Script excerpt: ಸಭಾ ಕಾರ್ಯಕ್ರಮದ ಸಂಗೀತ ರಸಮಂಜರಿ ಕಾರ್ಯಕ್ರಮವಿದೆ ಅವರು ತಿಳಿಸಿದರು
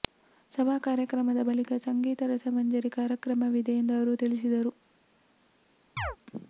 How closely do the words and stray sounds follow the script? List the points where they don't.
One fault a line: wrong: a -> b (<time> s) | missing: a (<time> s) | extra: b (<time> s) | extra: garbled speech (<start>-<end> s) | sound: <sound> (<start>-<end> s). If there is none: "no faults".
extra: ಬಳಿಕ (1.4 s)
extra: ಎಂದು (3.8 s)
sound: chirp (6.0-6.2 s)